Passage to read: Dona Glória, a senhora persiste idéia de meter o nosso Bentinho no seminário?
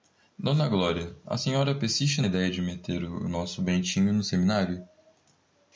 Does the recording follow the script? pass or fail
pass